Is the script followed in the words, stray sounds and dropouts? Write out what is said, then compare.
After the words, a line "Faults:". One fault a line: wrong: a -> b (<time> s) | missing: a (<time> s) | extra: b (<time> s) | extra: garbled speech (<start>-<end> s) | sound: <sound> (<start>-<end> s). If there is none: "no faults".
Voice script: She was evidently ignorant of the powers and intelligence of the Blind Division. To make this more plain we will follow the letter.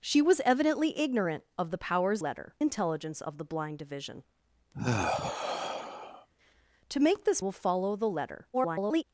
She was evidently ignorant of the powers letter intelligence of the Blind Division. To make this will follow the letter. [garbled]
Faults:
wrong: and -> letter (2.2 s)
sound: sigh (4.7-6.3 s)
missing: more plain we (7.4 s)
extra: garbled speech (8.5-9.0 s)